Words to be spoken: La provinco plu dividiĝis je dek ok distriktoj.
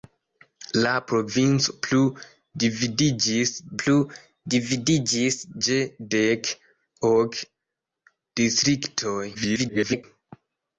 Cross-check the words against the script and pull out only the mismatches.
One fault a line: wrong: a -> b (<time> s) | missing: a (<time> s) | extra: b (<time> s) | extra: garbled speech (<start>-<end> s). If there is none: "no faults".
extra: plu dividiĝis (3.8 s)
extra: garbled speech (9.3-10.0 s)